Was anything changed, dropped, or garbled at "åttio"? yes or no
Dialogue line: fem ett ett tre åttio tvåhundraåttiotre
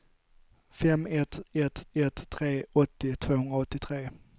no